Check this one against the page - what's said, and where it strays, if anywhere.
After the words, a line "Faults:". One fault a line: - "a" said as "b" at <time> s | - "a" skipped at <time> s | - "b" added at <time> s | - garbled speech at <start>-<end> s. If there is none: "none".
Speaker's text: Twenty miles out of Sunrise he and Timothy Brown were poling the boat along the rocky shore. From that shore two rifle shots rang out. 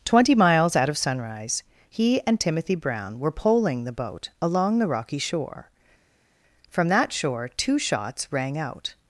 Twenty miles out of Sunrise he and Timothy Brown were poling the boat along the rocky shore. From that shore two shots rang out.
Faults:
- "rifle" skipped at 7.8 s